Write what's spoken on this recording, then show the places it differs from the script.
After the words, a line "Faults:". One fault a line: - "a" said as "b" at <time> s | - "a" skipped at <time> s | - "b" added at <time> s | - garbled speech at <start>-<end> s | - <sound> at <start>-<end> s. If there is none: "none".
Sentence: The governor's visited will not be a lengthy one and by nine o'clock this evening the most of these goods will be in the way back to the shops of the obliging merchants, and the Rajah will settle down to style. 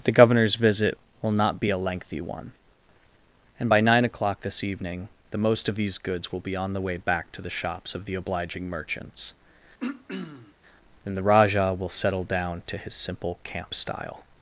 The governor's visit will not be a lengthy one and by nine o'clock this evening the most of these goods will be on the way back to the shops of the obliging merchants, and the Rajah will settle down to his simple camp style.
Faults:
- "visited" said as "visit" at 0.6 s
- "in" said as "on" at 6.5 s
- throat clearing at 9.8-10.5 s
- "his simple camp" added at 12.8 s